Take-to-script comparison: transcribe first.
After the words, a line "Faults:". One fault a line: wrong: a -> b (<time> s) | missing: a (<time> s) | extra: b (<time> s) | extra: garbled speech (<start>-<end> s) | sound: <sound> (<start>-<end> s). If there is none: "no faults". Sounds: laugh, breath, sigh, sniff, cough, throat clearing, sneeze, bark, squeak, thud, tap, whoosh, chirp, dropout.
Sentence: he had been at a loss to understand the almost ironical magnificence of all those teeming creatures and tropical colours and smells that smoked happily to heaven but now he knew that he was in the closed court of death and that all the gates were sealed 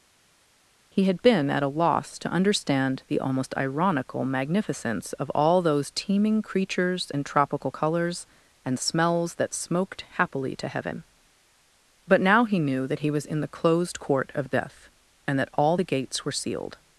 he had been at a loss to understand the almost ironical magnificence of all those teeming creatures and tropical colours and smells that smoked happily to heaven but now he knew that he was in the closed court of death and that all the gates were sealed
Faults:
no faults